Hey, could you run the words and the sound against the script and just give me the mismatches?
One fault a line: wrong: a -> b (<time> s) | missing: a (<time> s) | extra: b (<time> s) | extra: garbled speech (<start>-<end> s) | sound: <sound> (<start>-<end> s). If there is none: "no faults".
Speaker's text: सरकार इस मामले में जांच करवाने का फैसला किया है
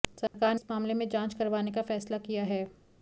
sound: dropout (0.3-0.3 s)